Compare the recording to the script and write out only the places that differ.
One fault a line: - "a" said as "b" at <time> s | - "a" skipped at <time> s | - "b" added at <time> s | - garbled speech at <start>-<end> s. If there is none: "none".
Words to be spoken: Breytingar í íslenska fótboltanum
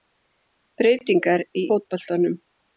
- "íslenska" skipped at 1.7 s